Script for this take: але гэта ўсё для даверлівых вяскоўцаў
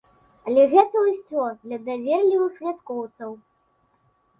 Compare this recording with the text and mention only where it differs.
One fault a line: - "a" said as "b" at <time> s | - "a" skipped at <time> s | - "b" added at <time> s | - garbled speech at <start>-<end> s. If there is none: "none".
none